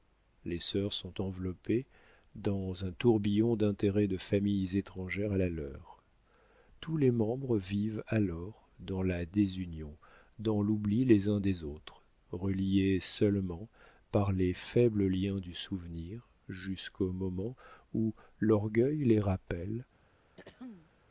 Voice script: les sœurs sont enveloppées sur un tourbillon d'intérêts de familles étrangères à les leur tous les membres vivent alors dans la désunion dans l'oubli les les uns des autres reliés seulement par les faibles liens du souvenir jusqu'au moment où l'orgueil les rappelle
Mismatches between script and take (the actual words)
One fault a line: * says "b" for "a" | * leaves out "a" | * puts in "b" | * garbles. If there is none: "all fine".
* says "dans" for "sur"
* says "la" for "les"
* leaves out "les"